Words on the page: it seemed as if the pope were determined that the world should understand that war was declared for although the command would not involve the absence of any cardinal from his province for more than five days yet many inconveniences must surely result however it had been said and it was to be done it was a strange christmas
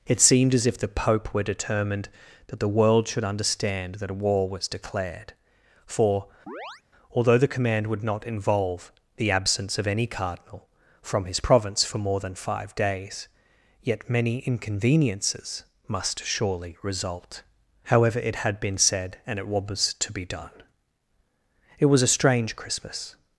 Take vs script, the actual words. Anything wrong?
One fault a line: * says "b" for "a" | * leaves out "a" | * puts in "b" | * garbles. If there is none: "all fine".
* puts in "a"